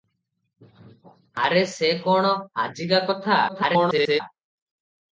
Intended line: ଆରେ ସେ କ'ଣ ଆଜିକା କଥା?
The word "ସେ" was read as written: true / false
true